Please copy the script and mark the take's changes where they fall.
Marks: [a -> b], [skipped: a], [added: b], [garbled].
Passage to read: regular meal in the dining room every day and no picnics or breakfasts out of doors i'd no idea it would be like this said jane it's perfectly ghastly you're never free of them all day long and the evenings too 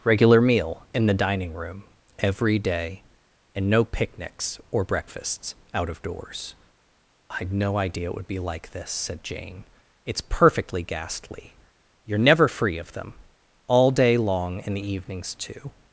regular meal in the dining room every day and no picnics or breakfasts out of doors i'd no idea it would be like this said jane it's perfectly ghastly you're never free of them all day long and the evenings too